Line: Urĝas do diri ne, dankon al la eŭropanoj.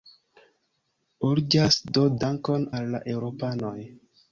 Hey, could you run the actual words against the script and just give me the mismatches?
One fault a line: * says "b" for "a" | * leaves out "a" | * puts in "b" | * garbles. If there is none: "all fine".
* leaves out "diri ne"